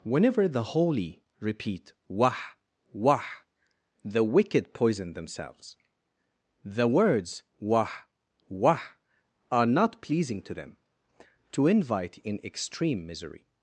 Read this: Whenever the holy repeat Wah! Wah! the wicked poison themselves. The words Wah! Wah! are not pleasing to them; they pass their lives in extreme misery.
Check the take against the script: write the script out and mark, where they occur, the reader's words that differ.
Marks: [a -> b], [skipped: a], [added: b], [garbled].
Whenever the holy repeat Wah! Wah! the wicked poison themselves. The words Wah! Wah! are not pleasing to them; [they pass their lives -> to invite] in extreme misery.